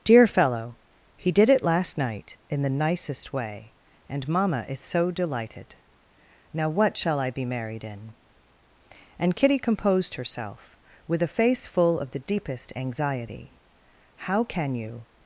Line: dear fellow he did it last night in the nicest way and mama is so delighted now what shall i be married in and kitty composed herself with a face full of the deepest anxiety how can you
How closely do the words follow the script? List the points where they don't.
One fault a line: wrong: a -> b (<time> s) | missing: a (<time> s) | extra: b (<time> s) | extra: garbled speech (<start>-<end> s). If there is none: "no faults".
no faults